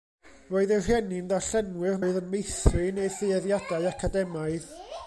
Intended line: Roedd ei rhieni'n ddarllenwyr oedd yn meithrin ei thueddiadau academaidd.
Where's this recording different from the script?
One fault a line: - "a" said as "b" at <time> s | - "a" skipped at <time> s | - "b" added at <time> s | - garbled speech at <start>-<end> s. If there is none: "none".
none